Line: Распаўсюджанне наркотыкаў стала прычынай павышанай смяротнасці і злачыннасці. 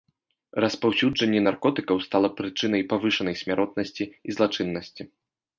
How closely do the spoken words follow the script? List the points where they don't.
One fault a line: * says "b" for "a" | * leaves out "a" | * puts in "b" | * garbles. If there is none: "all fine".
all fine